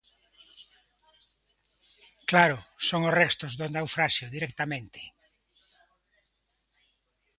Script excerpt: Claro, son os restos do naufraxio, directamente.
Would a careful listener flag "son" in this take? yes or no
no